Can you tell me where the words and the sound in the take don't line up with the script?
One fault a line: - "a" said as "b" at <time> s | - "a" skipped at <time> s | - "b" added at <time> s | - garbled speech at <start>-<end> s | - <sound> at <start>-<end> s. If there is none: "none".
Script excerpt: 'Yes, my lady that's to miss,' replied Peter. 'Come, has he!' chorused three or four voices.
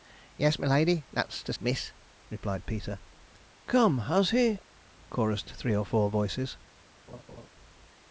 - laugh at 7.1-7.5 s